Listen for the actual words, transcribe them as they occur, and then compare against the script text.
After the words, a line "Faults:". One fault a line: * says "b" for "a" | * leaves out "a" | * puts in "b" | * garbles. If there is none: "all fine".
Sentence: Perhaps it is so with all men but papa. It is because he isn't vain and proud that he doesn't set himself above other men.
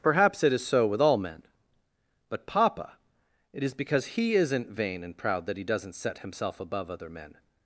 Perhaps it is so with all men but papa. It is because he isn't vain and proud that he doesn't set himself above other men.
Faults:
all fine